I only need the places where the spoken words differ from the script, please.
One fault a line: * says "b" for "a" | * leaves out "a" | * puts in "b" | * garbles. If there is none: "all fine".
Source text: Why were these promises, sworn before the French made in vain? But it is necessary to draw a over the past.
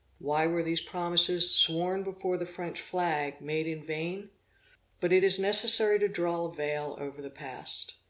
* puts in "flag"
* puts in "veil"